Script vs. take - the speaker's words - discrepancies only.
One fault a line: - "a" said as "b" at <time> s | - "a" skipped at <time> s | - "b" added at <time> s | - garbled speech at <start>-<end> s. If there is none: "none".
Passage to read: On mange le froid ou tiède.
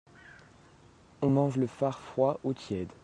- "far" added at 1.7 s